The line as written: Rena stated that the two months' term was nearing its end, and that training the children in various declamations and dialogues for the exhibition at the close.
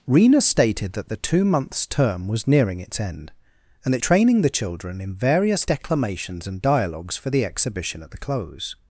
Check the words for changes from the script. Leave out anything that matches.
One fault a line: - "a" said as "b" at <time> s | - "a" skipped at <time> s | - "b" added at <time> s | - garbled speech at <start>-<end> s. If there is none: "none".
none